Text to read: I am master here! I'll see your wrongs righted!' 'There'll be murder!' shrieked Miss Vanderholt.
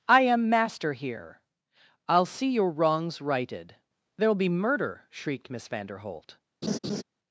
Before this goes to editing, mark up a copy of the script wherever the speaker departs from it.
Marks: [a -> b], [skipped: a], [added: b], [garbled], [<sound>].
I am master here! I'll see your wrongs righted!' 'There'll be murder!' shrieked Miss Vanderholt. [laugh]